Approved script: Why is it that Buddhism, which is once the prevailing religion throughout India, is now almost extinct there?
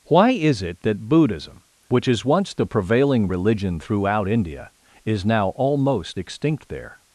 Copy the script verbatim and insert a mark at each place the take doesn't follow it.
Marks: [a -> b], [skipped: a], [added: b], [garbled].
Why is it that Buddhism, which is once the prevailing religion throughout India, is now almost extinct there?